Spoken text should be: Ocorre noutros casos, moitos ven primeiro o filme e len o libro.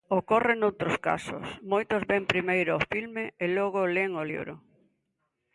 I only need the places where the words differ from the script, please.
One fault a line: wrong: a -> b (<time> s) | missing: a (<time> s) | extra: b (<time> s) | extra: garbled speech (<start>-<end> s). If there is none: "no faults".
extra: logo (3.6 s)